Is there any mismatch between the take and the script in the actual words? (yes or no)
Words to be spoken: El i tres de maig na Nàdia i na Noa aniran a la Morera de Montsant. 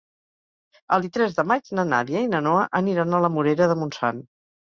no